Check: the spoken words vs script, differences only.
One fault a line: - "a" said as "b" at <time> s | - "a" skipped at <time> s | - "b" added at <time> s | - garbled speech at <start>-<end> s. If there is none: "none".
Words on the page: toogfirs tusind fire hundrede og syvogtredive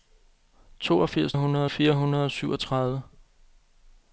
- "tusind" said as "hundrede" at 1.4 s